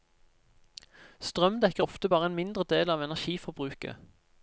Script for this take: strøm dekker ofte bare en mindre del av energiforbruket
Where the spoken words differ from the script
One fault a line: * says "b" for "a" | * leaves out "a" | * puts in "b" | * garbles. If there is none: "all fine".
all fine